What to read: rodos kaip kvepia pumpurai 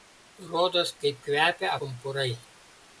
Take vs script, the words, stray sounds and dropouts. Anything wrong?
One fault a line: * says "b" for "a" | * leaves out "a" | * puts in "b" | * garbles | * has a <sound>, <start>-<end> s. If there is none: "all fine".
all fine